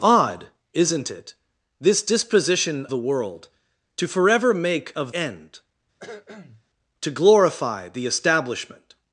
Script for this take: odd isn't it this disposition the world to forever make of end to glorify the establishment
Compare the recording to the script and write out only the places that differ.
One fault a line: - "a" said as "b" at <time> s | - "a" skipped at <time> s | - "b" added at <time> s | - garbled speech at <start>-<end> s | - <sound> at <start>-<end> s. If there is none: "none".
- cough at 6.0-6.6 s